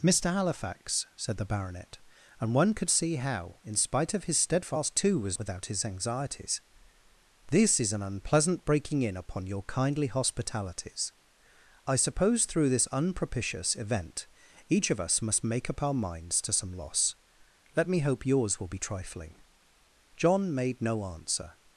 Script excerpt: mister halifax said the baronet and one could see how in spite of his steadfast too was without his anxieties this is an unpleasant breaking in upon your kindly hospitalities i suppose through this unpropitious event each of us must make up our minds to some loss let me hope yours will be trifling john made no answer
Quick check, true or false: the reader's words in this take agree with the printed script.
true